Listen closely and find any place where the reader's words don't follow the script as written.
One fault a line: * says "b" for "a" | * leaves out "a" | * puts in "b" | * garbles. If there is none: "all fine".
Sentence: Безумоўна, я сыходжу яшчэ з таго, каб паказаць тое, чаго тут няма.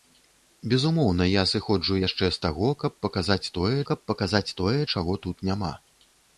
* puts in "каб паказаць тое"